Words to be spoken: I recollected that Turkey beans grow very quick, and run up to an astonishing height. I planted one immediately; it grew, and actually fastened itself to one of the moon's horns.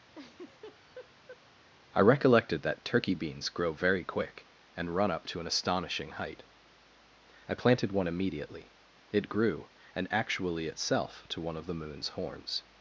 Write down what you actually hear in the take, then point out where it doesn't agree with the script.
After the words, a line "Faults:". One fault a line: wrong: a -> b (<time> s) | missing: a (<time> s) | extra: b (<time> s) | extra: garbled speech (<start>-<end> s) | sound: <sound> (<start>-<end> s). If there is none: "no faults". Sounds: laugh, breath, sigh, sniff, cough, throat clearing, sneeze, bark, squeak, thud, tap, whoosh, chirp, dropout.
I recollected that Turkey beans grow very quick, and run up to an astonishing height. I planted one immediately; it grew, and actually itself to one of the moon's horns.
Faults:
sound: laugh (0.1-1.4 s)
missing: fastened (10.7 s)